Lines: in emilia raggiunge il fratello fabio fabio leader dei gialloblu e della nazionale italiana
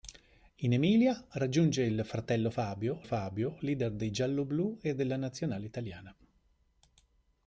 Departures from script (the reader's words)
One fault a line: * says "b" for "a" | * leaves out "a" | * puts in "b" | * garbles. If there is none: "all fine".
all fine